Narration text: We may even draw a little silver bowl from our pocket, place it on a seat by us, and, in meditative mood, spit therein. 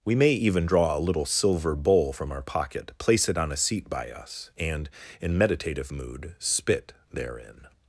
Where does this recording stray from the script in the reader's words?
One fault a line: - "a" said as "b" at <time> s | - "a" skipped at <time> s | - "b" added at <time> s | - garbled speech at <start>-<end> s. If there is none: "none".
none